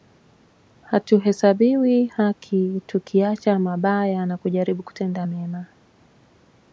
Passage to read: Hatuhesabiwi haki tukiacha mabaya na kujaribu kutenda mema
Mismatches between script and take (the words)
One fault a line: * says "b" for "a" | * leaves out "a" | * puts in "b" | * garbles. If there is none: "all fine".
all fine